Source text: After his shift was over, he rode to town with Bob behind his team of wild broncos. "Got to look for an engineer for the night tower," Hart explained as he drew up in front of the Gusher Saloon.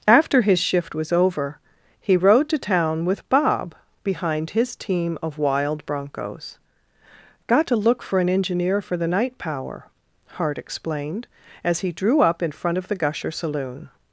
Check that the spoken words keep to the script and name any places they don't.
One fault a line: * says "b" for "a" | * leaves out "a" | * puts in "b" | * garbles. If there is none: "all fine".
* says "power" for "tower"